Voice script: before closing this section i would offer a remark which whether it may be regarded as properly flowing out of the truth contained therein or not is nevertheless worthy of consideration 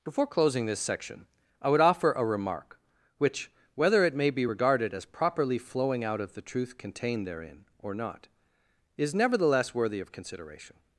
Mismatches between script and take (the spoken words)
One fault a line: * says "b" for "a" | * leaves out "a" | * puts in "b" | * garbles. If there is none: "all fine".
all fine